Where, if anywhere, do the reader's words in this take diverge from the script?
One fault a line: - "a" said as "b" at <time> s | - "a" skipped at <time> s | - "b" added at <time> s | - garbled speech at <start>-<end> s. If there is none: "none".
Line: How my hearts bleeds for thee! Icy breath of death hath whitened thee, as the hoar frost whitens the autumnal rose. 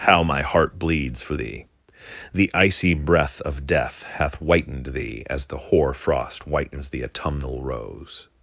- "hearts" said as "heart" at 0.4 s
- "The" added at 2.3 s